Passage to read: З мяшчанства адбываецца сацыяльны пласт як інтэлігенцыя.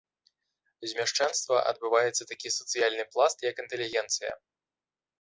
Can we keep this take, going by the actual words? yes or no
no